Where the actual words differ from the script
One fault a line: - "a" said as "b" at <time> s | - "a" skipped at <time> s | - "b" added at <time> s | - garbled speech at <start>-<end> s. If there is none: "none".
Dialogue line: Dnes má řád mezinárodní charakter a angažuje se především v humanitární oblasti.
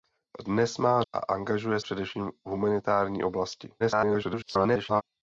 - "řád mezinárodní charakter" skipped at 1.0 s
- "se" skipped at 1.8 s
- garbled speech at 3.8-5.0 s